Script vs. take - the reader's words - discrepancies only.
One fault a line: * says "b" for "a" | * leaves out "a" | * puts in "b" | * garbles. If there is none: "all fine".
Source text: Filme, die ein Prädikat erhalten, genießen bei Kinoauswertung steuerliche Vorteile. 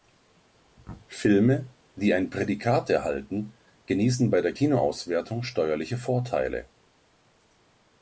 * puts in "der"